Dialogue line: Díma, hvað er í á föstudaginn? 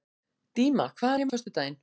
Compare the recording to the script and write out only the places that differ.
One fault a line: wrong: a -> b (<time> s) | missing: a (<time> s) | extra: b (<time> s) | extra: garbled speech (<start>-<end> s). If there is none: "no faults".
no faults